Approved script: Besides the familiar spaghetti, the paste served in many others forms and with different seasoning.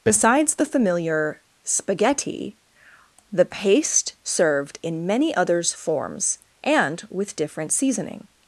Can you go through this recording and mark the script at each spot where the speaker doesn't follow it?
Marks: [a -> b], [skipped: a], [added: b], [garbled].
Besides the familiar spaghetti, the paste served in many others forms and with different seasoning.